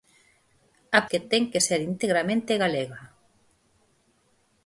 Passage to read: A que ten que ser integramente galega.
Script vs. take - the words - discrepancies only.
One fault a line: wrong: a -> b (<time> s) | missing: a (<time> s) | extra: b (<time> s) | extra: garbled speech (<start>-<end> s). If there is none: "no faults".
no faults